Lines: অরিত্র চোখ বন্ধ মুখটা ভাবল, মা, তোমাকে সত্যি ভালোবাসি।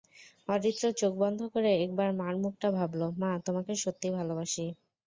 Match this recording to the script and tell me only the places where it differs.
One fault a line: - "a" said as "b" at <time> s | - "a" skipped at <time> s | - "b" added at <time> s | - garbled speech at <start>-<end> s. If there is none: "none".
- "করে একবার মার" added at 1.5 s